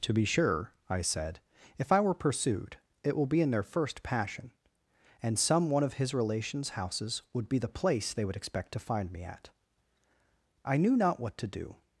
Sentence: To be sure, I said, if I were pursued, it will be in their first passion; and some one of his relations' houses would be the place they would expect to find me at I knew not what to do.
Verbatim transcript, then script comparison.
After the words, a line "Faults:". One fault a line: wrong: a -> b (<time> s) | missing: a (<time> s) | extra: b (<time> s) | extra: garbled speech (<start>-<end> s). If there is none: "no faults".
To be sure, I said, if I were pursued, it will be in their first passion; and some one of his relations' houses would be the place they would expect to find me at I knew not what to do.
Faults:
no faults